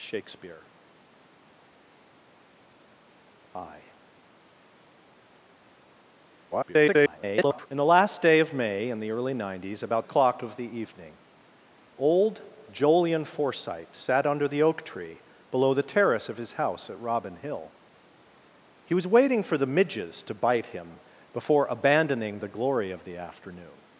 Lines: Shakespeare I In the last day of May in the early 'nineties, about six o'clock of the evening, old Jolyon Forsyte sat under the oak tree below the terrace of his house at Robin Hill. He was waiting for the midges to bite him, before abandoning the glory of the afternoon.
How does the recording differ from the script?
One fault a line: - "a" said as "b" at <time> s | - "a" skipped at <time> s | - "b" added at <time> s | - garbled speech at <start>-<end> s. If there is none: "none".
- garbled speech at 6.5-7.7 s
- "six" skipped at 10.1 s